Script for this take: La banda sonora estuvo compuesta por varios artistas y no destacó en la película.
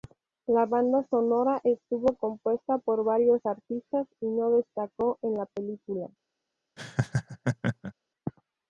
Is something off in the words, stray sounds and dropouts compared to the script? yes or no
yes